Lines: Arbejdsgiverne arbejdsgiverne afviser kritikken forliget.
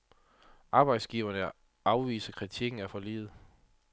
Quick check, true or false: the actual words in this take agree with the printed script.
false